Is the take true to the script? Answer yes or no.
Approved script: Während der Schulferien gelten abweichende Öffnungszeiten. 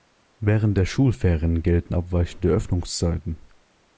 yes